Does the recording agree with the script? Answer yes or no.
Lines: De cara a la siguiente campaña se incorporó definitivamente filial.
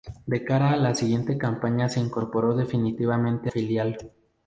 yes